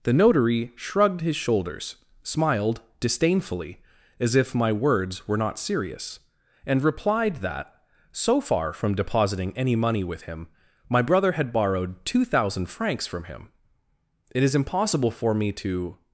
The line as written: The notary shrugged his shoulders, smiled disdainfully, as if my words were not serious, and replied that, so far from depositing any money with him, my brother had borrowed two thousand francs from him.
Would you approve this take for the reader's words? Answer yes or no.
no